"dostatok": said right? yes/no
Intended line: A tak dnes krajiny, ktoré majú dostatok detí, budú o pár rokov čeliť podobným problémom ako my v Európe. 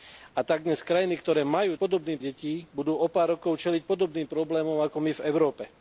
no